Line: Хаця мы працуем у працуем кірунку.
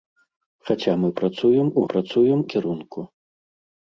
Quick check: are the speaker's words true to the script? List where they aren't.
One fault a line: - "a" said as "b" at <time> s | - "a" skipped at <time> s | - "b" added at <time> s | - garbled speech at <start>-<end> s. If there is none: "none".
none